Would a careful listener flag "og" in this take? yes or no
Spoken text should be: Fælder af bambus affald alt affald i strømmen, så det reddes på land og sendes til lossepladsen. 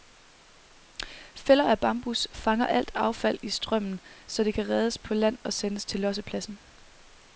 no